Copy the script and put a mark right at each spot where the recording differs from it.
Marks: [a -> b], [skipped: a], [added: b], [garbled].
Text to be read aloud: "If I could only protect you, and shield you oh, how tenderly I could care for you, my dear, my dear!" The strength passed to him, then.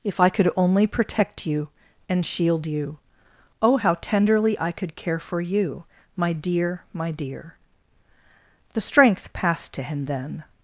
"If I could only protect you, and shield you oh, how tenderly I could care for you, my dear, my dear!" The strength passed to him, then.